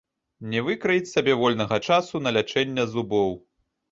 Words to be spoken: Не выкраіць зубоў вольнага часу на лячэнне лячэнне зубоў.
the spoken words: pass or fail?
fail